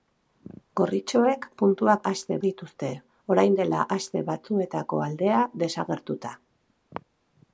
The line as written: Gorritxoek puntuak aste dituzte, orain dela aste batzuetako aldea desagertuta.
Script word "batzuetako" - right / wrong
right